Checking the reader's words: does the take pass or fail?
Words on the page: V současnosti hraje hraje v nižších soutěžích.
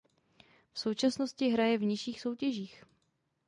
fail